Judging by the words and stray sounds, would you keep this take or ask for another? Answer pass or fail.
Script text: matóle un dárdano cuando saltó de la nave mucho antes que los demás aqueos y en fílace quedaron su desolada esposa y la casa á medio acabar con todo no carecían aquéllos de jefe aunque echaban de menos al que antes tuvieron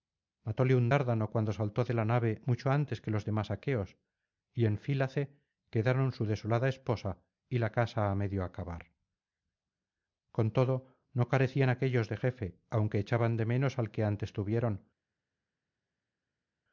pass